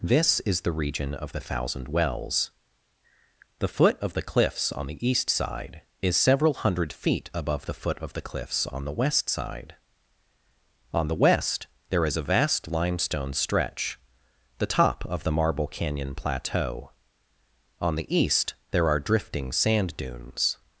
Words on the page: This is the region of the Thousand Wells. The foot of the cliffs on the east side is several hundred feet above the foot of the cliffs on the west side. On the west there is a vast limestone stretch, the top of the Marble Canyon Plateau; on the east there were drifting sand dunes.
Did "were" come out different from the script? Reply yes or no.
yes